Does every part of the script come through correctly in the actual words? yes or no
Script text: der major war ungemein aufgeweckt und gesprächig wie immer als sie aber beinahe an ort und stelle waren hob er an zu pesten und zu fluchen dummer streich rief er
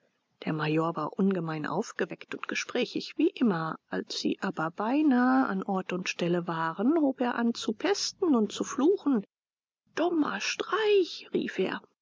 yes